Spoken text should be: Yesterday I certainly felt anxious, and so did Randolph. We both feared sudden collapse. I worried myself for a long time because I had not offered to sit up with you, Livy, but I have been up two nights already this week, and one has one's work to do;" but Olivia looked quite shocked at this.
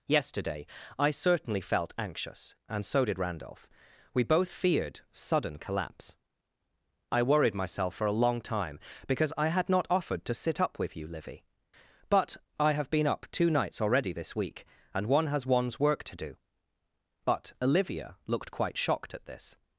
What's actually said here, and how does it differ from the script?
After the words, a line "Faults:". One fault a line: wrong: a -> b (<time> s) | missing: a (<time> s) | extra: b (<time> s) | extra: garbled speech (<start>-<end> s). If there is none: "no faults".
Yesterday I certainly felt anxious, and so did Randolph. We both feared sudden collapse. I worried myself for a long time because I had not offered to sit up with you, Livy, but I have been up two nights already this week, and one has one's work to do;" but Olivia looked quite shocked at this.
Faults:
no faults